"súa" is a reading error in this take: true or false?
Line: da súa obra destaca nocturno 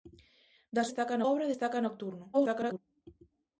true